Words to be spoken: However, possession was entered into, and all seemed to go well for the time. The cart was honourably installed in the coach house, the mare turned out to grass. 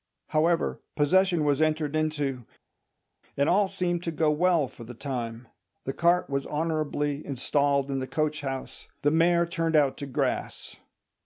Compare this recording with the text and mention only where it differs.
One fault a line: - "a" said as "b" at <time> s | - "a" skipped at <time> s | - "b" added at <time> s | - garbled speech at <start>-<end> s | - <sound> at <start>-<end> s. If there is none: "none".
none